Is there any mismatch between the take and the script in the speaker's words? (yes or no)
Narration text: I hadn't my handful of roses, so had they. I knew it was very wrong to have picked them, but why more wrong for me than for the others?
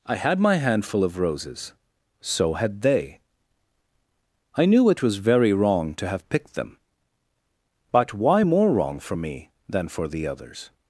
yes